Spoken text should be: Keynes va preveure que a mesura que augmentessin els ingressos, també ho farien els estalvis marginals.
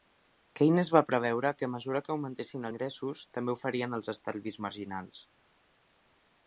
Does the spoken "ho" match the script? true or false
true